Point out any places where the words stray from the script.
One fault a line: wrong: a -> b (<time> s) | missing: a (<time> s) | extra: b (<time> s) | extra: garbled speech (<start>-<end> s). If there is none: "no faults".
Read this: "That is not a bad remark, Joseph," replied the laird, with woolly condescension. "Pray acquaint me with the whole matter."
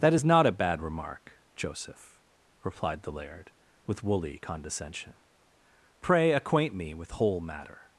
missing: the (7.1 s)